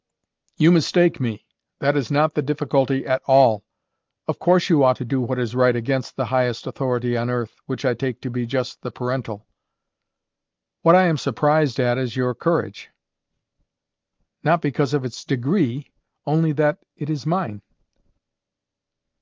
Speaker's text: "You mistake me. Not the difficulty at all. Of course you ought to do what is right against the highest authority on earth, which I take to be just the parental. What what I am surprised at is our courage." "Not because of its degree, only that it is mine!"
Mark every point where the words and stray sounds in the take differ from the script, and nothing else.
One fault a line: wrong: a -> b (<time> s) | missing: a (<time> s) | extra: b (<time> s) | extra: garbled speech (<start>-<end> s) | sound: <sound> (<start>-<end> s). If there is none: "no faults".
extra: That is (1.8 s)
missing: what (10.9 s)
wrong: our -> your (12.1 s)